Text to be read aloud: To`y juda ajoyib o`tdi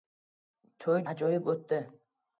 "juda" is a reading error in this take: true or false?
true